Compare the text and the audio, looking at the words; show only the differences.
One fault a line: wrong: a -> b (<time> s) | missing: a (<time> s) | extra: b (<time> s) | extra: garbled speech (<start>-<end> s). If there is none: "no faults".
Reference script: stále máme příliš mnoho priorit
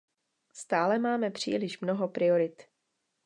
no faults